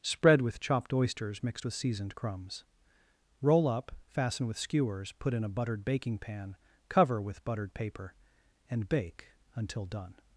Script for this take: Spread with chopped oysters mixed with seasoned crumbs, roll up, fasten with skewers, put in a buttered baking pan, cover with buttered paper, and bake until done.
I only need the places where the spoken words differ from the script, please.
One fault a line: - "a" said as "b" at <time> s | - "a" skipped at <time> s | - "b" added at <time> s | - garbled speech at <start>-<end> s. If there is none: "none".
none